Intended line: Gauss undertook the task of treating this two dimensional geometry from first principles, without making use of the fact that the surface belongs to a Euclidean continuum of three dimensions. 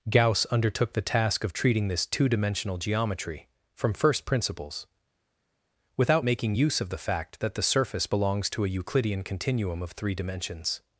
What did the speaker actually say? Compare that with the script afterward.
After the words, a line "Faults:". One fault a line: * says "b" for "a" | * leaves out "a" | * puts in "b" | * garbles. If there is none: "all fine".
Gauss undertook the task of treating this two dimensional geometry from first principles, without making use of the fact that the surface belongs to a Euclidean continuum of three dimensions.
Faults:
all fine